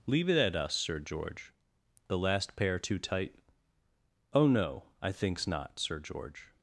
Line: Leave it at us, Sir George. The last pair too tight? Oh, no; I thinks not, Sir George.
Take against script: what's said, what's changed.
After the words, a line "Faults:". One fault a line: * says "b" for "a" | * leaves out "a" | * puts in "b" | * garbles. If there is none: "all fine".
Leave it at us, Sir George. The last pair too tight? Oh, no; I thinks not, Sir George.
Faults:
all fine